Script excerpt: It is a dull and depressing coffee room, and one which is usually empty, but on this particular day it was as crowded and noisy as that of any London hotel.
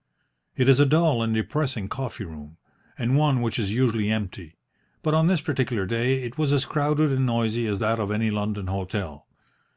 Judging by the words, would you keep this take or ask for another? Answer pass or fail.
pass